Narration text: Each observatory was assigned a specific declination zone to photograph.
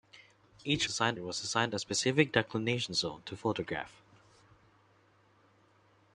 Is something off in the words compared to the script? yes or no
yes